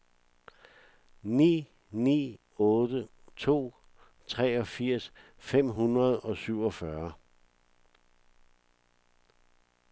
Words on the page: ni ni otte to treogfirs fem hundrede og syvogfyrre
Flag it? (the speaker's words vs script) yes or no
no